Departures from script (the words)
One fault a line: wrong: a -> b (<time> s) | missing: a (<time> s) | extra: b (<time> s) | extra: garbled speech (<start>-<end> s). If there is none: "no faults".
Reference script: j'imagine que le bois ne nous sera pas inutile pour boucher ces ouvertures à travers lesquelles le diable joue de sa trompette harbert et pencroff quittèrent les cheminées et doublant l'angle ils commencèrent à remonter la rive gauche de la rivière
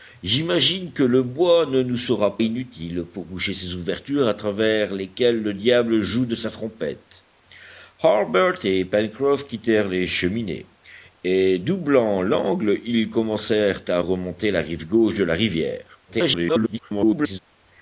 missing: pas (2.4 s)
extra: garbled speech (16.1-17.4 s)